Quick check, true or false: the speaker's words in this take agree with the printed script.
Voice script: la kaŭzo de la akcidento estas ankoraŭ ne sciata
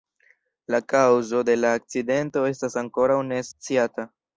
true